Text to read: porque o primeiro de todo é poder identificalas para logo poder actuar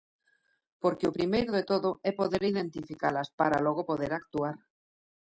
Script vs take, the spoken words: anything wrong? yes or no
no